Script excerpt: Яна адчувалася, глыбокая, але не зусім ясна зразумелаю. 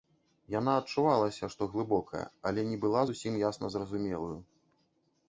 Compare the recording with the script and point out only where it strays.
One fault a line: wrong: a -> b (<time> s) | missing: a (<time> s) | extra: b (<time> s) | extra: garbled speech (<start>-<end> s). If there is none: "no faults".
extra: што (1.6 s)
extra: была (2.9 s)